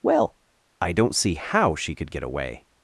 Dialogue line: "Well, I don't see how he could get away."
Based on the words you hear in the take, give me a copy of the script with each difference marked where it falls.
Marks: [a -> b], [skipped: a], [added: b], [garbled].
"Well, I don't see how [he -> she] could get away."